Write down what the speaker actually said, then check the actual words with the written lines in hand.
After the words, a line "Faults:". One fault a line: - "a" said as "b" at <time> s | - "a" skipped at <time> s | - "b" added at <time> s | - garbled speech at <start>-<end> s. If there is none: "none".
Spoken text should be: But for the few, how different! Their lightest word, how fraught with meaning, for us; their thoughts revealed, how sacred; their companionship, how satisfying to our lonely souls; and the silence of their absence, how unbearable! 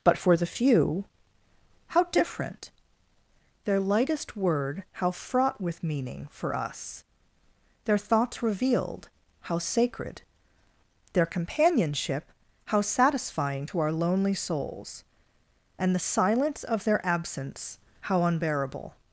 But for the few, how different! Their lightest word, how fraught with meaning, for us; their thoughts revealed, how sacred; their companionship, how satisfying to our lonely souls; and the silence of their absence, how unbearable!
Faults:
none